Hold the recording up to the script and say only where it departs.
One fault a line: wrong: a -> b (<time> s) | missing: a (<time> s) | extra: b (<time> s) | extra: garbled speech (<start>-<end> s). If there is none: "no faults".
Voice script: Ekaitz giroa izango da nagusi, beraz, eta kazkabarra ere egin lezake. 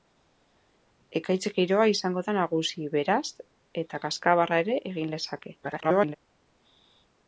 extra: garbled speech (5.6-6.2 s)